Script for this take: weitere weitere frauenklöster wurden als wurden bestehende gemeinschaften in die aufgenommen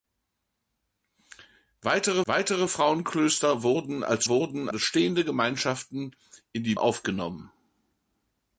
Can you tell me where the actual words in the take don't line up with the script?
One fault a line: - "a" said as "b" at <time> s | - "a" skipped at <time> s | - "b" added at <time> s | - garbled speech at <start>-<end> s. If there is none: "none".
none